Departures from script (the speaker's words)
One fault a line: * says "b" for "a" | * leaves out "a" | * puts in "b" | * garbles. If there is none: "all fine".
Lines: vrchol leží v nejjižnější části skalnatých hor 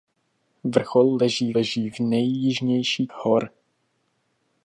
* puts in "leží"
* leaves out "části skalnatých"